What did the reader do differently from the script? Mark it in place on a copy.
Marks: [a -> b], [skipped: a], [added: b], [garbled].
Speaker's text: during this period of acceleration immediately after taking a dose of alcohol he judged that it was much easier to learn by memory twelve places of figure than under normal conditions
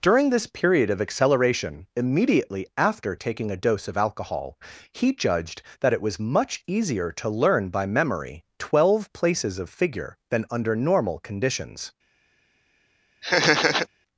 during this period of acceleration immediately after taking a dose of alcohol he judged that it was much easier to learn by memory twelve places of figure than under normal conditions